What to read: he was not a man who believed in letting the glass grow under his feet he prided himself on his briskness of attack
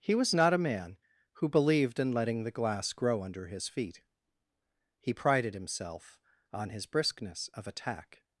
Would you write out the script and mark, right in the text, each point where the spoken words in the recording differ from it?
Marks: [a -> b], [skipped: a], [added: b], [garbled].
he was not a man who believed in letting the glass grow under his feet he prided himself on his briskness of attack